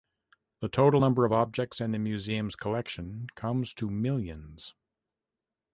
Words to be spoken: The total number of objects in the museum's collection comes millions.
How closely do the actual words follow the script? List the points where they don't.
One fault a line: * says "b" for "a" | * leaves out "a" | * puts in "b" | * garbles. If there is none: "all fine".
* puts in "to"